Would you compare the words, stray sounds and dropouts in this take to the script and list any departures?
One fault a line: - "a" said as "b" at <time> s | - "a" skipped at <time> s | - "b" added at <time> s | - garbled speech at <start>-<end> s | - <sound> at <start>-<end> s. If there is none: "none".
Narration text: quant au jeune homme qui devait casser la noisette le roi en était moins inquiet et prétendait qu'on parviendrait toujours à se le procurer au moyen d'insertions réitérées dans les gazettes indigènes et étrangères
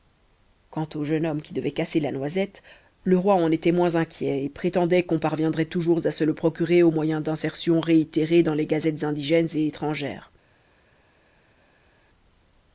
none